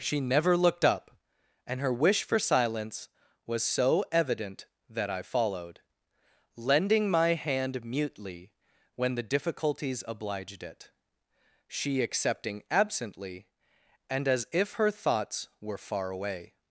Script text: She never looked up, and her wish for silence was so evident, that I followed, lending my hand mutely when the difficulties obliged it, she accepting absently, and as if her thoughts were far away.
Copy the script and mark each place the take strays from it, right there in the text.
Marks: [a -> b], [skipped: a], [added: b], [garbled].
She never looked up, and her wish for silence was so evident, that I followed, lending my hand mutely when the difficulties obliged it, she accepting absently, and as if her thoughts were far away.